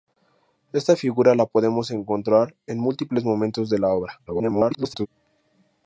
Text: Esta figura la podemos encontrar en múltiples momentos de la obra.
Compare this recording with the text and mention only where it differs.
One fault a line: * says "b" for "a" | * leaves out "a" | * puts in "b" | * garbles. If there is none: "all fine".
* garbles